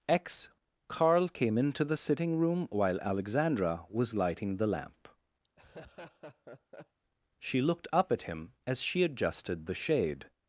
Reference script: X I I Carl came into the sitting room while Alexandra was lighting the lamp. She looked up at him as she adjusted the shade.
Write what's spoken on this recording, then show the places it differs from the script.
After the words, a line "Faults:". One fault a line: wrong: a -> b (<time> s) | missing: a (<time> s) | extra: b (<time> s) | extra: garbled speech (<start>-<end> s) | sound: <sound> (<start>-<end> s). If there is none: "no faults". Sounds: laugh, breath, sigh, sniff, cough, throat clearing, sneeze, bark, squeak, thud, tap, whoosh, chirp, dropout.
X Carl came into the sitting room while Alexandra was lighting the lamp. She looked up at him as she adjusted the shade.
Faults:
missing: I I (0.5 s)
sound: laugh (5.4-7.0 s)